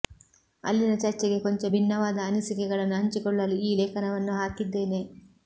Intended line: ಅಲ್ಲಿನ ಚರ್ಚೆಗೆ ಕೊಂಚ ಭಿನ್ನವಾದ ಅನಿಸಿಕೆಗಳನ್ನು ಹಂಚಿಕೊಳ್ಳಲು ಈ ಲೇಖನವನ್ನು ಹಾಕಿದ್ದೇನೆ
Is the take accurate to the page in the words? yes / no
yes